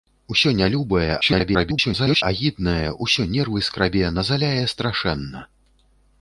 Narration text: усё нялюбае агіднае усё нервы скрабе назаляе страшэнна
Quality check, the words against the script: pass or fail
fail